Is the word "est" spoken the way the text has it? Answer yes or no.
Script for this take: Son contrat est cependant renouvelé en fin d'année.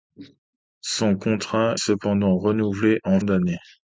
no